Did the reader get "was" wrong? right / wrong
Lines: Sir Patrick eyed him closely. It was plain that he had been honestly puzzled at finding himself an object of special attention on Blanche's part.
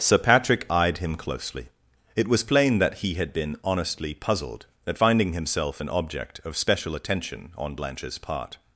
right